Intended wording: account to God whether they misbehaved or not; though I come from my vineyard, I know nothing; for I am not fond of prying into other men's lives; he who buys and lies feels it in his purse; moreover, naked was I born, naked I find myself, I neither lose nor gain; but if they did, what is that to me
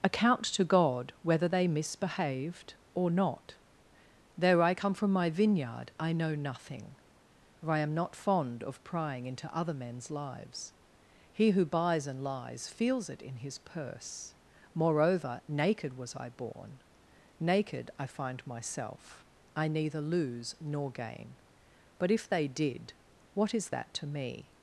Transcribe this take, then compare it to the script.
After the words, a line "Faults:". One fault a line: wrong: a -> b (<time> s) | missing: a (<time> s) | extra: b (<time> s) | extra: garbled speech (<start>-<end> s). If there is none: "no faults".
account to God whether they misbehaved or not; though I come from my vineyard, I know nothing; for I am not fond of prying into other men's lives; he who buys and lies feels it in his purse; moreover, naked was I born, naked I find myself, I neither lose nor gain; but if they did, what is that to me
Faults:
no faults